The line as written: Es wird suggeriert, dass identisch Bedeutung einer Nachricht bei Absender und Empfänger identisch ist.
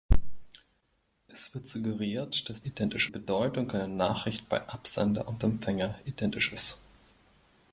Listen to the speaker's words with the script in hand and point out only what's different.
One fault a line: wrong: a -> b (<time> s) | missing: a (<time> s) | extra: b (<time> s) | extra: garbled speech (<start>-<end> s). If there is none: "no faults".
no faults